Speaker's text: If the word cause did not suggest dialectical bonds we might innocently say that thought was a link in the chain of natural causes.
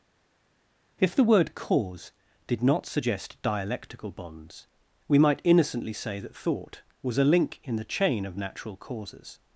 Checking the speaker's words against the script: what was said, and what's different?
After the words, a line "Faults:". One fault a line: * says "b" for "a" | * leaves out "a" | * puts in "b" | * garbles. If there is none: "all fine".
If the word cause did not suggest dialectical bonds we might innocently say that thought was a link in the chain of natural causes.
Faults:
all fine